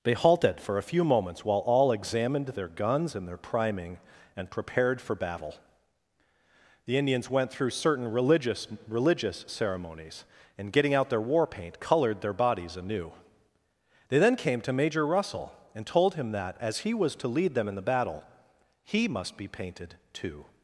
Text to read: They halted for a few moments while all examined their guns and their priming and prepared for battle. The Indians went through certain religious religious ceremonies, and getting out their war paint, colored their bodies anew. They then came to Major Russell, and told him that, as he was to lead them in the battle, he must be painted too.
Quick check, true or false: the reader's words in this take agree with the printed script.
true